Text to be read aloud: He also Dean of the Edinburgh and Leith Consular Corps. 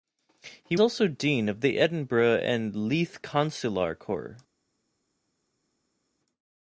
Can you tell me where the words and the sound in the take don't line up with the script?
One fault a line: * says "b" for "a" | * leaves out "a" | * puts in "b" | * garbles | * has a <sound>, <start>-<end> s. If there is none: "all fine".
all fine